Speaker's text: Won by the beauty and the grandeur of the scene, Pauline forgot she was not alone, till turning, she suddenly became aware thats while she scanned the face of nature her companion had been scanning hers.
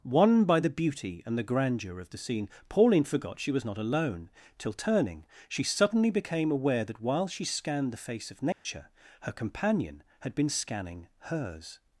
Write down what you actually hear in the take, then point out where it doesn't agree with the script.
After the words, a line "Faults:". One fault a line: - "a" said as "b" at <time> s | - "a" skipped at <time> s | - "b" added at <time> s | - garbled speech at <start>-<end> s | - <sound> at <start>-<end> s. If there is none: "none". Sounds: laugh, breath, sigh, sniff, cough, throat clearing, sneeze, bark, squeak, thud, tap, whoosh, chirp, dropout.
Won by the beauty and the grandeur of the scene, Pauline forgot she was not alone, till turning, she suddenly became aware that while she scanned the face of nature her companion had been scanning hers.
Faults:
- "thats" said as "that" at 6.8 s
- dropout at 8.5-8.7 s